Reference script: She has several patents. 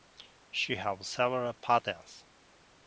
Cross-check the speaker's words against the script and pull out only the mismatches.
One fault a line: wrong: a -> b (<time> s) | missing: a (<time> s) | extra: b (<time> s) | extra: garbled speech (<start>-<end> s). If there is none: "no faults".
no faults